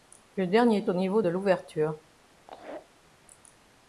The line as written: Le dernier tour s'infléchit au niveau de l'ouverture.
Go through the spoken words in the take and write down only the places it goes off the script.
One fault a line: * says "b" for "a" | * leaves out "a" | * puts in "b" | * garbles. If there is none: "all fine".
* leaves out "tour s'infléchit"